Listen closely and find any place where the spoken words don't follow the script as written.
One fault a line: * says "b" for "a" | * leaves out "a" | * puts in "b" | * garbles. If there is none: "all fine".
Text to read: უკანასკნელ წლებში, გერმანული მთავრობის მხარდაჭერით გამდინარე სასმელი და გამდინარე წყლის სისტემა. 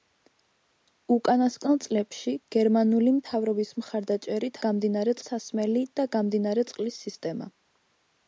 all fine